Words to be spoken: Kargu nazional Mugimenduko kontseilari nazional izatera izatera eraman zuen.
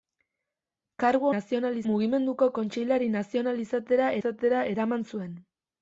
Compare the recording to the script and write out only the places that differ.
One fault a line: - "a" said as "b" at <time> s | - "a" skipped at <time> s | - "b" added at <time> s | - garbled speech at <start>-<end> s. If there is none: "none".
none